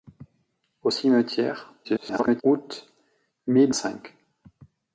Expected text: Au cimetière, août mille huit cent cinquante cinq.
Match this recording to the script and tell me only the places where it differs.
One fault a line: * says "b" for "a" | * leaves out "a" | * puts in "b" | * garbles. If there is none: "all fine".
* garbles
* leaves out "huit cent cinquante"